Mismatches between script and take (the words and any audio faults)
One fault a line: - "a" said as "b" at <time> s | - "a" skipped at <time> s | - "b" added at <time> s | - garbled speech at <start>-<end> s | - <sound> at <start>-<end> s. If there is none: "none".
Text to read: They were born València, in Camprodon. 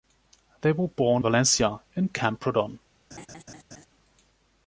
- laugh at 3.1-3.9 s